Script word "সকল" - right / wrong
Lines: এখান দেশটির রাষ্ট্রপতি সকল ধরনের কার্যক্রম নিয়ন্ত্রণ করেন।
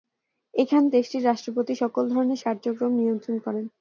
right